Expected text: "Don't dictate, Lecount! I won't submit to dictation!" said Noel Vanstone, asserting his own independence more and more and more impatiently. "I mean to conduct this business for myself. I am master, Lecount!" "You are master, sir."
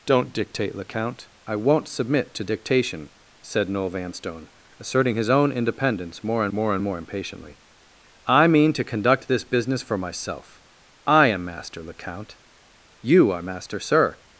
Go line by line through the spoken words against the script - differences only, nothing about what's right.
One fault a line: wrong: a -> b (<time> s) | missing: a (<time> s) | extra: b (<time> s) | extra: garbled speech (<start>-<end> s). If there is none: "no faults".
no faults